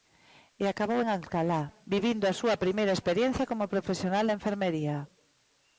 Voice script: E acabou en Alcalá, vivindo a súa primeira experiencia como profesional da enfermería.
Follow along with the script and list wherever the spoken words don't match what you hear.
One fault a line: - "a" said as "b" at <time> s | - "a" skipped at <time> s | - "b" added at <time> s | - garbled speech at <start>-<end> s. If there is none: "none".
none